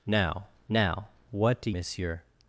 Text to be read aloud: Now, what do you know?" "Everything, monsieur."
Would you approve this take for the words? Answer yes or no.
no